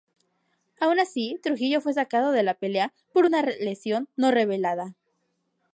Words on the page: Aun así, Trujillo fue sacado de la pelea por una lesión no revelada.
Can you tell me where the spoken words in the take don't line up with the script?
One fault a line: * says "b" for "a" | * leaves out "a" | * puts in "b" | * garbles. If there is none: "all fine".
all fine